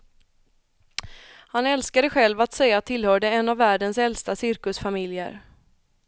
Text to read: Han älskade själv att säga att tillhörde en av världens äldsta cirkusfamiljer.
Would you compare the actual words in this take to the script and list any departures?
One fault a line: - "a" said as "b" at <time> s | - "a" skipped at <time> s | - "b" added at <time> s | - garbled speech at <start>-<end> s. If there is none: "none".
none